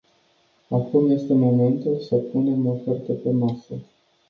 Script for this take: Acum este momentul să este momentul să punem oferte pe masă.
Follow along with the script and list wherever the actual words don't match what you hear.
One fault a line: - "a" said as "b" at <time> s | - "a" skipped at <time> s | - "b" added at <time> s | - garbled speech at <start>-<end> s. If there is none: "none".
- "este momentul să" skipped at 2.1 s